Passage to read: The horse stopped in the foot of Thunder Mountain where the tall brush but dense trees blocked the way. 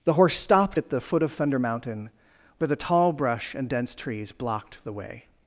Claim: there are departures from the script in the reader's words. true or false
true